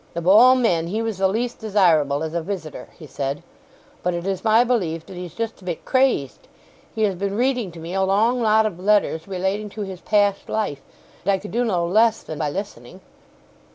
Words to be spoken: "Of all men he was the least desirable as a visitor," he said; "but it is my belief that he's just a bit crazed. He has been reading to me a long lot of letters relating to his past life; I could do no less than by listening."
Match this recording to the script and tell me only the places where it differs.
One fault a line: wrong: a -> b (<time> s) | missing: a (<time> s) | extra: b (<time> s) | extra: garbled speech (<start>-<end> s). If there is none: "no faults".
no faults